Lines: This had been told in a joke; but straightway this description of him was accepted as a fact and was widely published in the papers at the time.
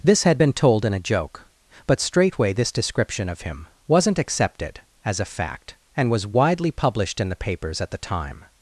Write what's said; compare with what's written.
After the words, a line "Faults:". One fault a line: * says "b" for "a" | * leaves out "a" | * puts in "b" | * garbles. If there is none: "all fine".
This had been told in a joke; but straightway this description of him wasn't accepted as a fact and was widely published in the papers at the time.
Faults:
* says "wasn't" for "was"